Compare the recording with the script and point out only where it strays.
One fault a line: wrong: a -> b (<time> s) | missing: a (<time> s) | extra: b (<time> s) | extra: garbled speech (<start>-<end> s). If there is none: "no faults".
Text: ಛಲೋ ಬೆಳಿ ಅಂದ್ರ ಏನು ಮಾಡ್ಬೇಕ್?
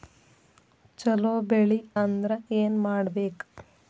no faults